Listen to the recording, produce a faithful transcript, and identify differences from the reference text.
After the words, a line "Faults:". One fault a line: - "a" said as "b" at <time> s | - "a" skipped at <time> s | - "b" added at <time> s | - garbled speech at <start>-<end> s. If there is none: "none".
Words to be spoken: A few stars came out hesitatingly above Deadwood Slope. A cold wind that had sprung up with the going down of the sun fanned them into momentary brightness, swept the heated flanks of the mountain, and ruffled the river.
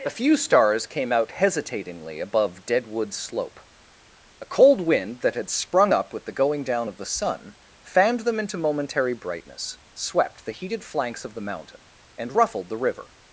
A few stars came out hesitatingly above Deadwood Slope. A cold wind that had sprung up with the going down of the sun fanned them into momentary brightness, swept the heated flanks of the mountain, and ruffled the river.
Faults:
none